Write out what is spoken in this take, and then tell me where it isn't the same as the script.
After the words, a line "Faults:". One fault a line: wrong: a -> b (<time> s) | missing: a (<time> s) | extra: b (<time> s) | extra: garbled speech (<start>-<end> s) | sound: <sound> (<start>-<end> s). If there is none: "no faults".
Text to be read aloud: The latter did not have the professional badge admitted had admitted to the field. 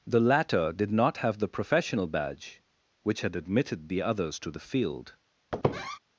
The latter did not have the professional badge which had admitted the others to the field.
Faults:
wrong: admitted -> which (3.0 s)
extra: the others (3.9 s)
sound: squeak (5.5-6.0 s)